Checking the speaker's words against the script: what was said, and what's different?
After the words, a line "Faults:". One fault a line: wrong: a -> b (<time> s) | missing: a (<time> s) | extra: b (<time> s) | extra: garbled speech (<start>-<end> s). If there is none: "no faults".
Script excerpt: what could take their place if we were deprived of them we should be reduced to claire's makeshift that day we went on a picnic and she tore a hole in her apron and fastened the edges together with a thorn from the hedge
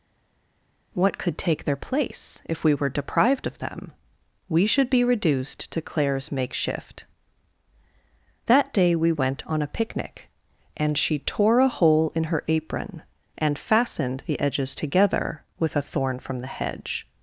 what could take their place if we were deprived of them we should be reduced to claire's makeshift that day we went on a picnic and she tore a hole in her apron and fastened the edges together with a thorn from the hedge
Faults:
no faults